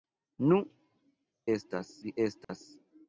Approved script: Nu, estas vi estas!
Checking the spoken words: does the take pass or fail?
pass